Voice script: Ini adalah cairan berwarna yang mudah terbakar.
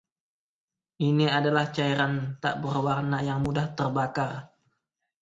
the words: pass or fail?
fail